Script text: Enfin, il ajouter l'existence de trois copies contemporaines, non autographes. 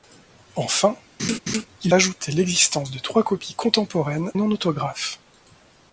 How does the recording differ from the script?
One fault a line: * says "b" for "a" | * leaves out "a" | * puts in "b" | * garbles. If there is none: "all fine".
all fine